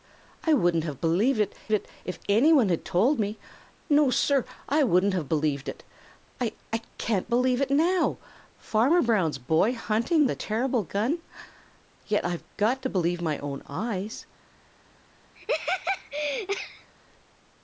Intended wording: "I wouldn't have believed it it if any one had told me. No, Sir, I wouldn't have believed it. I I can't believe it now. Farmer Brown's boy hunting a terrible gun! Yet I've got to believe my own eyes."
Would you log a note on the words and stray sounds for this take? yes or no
yes